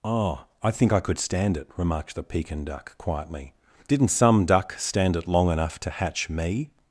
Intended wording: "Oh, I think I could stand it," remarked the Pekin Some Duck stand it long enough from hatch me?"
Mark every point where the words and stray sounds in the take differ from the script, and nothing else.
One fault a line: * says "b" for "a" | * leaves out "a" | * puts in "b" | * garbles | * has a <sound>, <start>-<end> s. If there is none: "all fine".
* puts in "Duck quietly Didn't"
* says "to" for "from"